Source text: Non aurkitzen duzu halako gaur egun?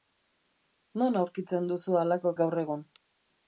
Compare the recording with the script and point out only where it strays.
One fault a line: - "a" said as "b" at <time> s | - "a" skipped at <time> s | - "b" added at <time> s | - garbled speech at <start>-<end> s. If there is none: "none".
none